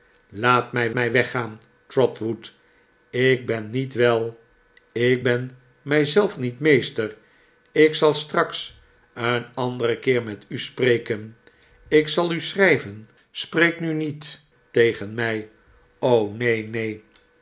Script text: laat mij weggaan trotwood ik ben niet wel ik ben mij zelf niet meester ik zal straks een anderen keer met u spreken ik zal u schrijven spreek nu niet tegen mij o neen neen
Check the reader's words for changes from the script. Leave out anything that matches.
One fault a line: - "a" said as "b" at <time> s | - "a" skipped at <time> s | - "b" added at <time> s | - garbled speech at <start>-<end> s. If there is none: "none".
- "mij" added at 0.9 s